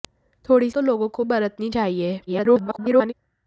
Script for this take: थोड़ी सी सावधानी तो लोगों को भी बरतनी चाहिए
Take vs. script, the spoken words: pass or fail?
fail